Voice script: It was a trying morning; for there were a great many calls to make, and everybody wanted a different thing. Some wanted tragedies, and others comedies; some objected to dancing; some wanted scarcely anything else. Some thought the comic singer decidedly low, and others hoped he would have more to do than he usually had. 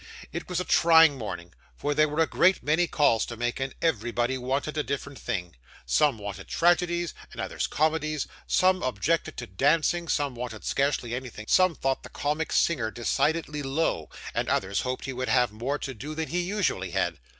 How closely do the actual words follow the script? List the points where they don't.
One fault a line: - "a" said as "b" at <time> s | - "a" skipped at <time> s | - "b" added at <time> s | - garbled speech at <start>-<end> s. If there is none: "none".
- "else" skipped at 11.5 s